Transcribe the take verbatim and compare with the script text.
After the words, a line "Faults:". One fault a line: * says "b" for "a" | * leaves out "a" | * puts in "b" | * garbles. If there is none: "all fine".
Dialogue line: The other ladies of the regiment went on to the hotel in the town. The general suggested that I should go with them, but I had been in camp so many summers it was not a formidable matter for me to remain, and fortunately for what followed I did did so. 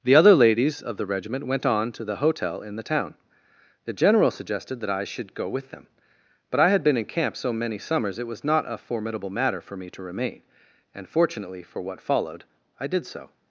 The other ladies of the regiment went on to the hotel in the town. The general suggested that I should go with them, but I had been in camp so many summers it was not a formidable matter for me to remain, and fortunately for what followed I did so.
Faults:
* leaves out "did"